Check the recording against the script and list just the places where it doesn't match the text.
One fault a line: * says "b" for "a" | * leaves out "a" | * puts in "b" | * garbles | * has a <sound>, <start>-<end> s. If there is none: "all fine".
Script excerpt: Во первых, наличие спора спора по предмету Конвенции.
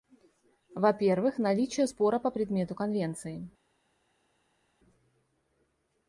* leaves out "спора"